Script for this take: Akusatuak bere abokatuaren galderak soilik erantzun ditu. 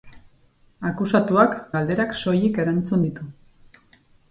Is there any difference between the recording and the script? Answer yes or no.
yes